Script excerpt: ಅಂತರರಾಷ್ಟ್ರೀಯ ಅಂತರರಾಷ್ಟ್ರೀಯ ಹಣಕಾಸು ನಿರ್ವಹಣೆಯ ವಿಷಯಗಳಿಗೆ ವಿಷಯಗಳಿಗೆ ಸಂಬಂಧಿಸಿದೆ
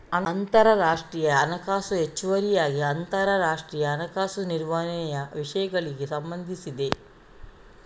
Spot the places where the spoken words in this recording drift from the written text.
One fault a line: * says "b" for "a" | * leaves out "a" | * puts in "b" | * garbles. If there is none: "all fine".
* puts in "ಹಣಕಾಸು ಹೆಚ್ಚುವರಿಯಾಗಿ"
* leaves out "ವಿಷಯಗಳಿಗೆ"